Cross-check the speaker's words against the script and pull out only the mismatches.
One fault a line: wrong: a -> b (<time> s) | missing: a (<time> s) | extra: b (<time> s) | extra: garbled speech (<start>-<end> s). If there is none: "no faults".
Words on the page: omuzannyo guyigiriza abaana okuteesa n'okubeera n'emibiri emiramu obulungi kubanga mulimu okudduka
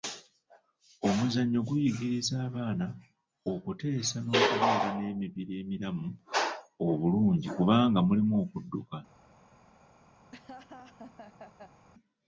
no faults